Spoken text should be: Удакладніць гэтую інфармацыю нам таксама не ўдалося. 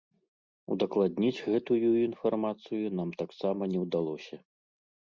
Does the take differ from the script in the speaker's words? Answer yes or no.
no